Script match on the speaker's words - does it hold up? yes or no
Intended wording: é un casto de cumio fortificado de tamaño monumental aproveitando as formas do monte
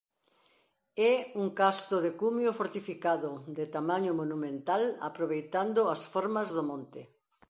yes